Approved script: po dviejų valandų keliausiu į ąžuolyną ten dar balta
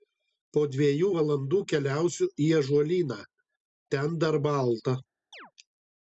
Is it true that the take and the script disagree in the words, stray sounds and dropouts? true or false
true